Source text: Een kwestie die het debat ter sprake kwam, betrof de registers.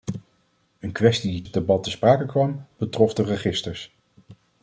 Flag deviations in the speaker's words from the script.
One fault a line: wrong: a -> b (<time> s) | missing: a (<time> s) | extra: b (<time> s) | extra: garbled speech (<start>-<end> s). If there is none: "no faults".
no faults